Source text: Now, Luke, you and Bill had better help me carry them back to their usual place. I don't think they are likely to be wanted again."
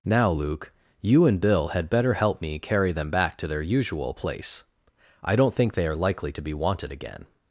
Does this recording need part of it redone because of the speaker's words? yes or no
no